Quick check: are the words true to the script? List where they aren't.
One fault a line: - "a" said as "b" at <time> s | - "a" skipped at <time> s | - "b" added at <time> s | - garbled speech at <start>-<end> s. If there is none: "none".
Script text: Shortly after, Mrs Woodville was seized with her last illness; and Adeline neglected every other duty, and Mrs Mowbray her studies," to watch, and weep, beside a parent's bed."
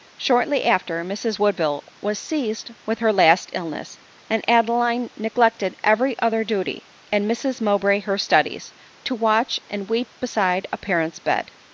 none